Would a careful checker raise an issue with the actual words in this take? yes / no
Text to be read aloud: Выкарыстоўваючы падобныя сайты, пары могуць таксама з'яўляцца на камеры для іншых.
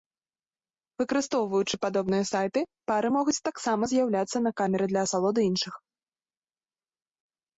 yes